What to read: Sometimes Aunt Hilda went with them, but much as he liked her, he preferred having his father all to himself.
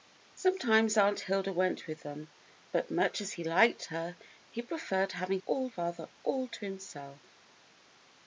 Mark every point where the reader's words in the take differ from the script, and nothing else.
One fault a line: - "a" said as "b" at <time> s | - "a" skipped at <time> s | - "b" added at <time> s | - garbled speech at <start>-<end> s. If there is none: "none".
- "his" said as "all" at 5.4 s